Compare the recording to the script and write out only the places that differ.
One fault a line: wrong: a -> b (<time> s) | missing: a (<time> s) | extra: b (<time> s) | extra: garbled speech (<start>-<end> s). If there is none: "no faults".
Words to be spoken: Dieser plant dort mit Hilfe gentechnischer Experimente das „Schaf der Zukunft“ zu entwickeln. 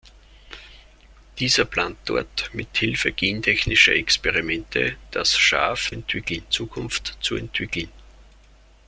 wrong: der -> entwickeln (5.9 s)